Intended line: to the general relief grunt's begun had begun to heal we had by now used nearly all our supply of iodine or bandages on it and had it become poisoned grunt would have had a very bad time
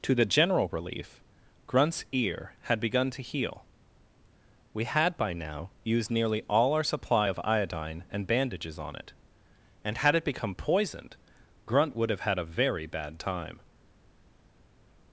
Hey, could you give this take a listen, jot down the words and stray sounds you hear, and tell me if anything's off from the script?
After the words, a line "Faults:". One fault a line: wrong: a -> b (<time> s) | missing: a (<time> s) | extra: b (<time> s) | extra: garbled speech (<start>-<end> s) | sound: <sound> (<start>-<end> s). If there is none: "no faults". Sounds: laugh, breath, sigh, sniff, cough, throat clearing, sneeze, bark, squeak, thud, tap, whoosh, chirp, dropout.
to the general relief grunt's ear had begun to heal we had by now used nearly all our supply of iodine and bandages on it and had it become poisoned grunt would have had a very bad time
Faults:
wrong: begun -> ear (2.1 s)
wrong: or -> and (8.1 s)